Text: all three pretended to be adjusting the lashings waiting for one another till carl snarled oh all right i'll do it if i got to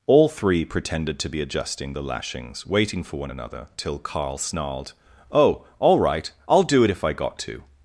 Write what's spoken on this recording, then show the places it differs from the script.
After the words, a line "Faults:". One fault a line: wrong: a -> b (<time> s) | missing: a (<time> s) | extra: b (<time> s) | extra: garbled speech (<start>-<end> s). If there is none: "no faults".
all three pretended to be adjusting the lashings waiting for one another till carl snarled oh all right i'll do it if i got to
Faults:
no faults